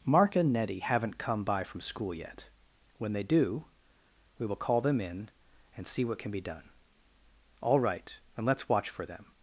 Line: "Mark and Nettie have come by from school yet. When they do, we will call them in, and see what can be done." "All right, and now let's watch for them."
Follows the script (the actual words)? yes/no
no